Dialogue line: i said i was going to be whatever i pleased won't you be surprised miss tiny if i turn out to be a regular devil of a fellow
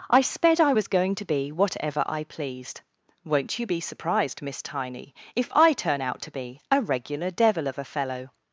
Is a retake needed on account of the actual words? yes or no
yes